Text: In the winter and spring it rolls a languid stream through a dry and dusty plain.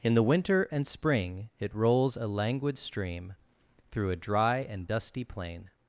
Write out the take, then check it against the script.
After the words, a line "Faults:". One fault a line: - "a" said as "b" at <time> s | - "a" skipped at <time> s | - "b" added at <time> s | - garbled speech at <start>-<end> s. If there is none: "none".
In the winter and spring it rolls a languid stream through a dry and dusty plain.
Faults:
none